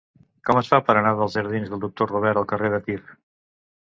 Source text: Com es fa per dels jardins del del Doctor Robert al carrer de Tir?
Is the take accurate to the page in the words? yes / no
no